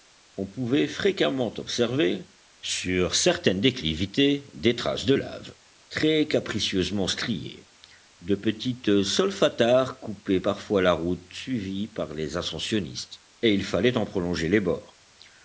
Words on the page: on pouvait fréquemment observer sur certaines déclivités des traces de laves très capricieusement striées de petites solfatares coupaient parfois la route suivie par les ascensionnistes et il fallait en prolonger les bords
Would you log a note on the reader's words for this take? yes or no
no